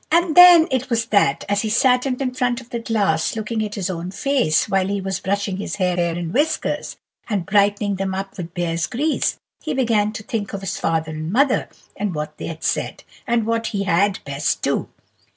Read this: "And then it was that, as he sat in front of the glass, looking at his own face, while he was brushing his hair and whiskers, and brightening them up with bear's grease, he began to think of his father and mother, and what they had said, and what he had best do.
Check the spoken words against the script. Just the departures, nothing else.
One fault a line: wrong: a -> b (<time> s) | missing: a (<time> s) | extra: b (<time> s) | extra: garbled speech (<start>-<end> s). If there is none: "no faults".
extra: in (2.2 s)
extra: hair (5.9 s)